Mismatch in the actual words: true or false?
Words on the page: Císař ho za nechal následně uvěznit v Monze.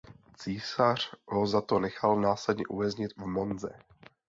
true